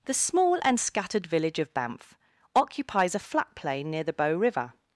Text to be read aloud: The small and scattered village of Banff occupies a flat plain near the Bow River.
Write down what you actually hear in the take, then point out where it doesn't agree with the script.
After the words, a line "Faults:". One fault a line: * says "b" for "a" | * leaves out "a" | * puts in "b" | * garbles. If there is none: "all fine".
The small and scattered village of Banff occupies a flat plain near the Bow River.
Faults:
all fine